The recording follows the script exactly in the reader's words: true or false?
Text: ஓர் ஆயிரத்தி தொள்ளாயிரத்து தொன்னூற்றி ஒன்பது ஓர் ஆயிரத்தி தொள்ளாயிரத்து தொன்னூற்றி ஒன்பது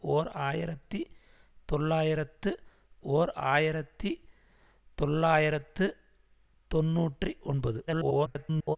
false